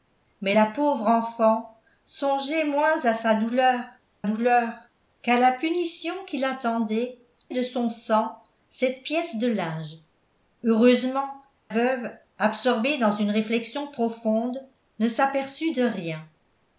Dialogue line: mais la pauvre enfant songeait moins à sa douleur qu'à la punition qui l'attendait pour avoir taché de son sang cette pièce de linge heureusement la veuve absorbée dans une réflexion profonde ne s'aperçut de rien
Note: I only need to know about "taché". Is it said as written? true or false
false